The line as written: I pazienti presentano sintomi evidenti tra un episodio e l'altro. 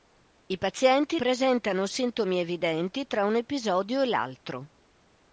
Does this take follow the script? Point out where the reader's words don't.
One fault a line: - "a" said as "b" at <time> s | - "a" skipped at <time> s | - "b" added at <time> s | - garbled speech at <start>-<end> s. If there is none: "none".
none